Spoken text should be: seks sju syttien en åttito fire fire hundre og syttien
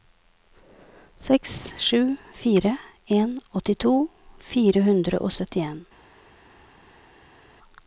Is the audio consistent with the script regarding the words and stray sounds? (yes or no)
no